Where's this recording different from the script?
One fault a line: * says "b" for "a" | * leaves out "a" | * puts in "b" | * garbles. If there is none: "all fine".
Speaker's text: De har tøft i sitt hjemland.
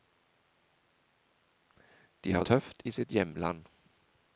all fine